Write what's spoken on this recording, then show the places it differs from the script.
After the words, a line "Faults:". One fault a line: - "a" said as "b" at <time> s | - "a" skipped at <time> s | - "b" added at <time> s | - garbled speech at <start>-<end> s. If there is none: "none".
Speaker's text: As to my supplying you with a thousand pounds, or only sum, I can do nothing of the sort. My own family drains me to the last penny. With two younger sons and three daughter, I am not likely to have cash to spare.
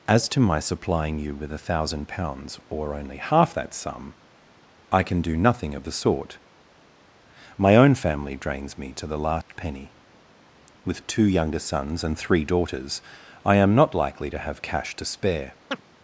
As to my supplying you with a thousand pounds, or only half that sum, I can do nothing of the sort. My own family drains me to the last penny. With two younger sons and three daughters, I am not likely to have cash to spare.
Faults:
- "half that" added at 3.2 s
- "daughter" said as "daughters" at 12.5 s